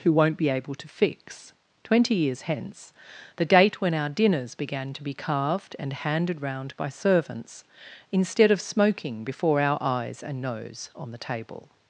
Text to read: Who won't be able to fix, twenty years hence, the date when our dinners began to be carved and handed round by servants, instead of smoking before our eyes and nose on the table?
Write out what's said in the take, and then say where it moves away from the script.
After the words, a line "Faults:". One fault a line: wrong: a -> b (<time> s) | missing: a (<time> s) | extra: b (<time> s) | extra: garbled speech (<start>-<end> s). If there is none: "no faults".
Who won't be able to fix, twenty years hence, the date when our dinners began to be carved and handed round by servants, instead of smoking before our eyes and nose on the table?
Faults:
no faults